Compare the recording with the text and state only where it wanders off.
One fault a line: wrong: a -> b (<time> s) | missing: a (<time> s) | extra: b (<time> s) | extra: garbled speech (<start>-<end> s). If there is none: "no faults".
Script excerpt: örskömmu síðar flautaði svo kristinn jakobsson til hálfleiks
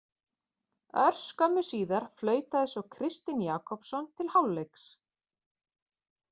no faults